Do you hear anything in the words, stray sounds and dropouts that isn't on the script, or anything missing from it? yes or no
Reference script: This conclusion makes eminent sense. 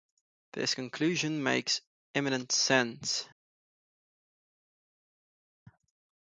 no